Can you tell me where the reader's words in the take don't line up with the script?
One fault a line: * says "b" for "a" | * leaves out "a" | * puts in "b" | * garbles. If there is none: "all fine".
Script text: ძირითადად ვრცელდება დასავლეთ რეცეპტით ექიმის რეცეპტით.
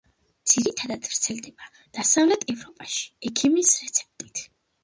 * says "ევროპაში" for "რეცეპტით"